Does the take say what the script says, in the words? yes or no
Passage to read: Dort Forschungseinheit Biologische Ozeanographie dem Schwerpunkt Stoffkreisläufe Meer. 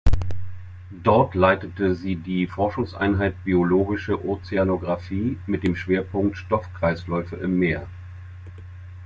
no